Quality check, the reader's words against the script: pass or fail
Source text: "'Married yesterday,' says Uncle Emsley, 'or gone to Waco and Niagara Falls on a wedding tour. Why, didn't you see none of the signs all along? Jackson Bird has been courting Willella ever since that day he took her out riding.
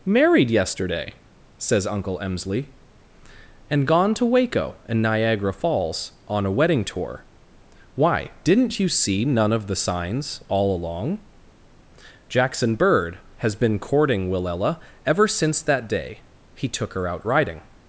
fail